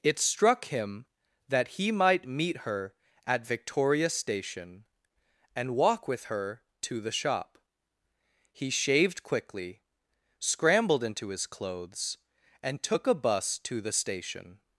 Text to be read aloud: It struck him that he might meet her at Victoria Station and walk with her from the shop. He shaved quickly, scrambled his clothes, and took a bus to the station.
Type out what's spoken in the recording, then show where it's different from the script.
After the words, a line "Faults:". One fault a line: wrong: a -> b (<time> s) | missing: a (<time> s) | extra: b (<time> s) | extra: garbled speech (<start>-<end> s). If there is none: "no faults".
It struck him that he might meet her at Victoria Station and walk with her to the shop. He shaved quickly, scrambled into his clothes, and took a bus to the station.
Faults:
wrong: from -> to (6.8 s)
extra: into (11.0 s)